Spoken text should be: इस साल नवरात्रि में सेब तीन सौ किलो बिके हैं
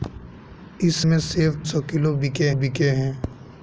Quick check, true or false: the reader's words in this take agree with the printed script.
false